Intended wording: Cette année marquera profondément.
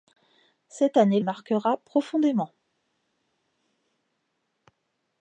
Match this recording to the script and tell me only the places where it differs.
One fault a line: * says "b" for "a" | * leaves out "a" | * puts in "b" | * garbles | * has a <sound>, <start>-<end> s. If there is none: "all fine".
all fine